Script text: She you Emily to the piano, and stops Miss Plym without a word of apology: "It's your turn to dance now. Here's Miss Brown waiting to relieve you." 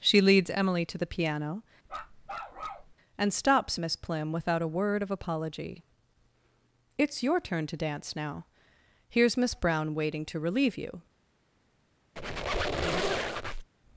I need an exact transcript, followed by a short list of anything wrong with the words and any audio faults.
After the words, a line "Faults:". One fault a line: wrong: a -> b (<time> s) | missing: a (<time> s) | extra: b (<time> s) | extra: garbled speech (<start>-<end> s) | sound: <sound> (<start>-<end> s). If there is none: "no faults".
She leads Emily to the piano, and stops Miss Plym without a word of apology: "It's your turn to dance now. Here's Miss Brown waiting to relieve you."
Faults:
wrong: you -> leads (0.2 s)
sound: bark (1.9-2.9 s)
sound: squeak (12.2-13.7 s)